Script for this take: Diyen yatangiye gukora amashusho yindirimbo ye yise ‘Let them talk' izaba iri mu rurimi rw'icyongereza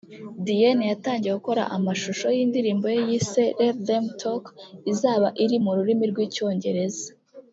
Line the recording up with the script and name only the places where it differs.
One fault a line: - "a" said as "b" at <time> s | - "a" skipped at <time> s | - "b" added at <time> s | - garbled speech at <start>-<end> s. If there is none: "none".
none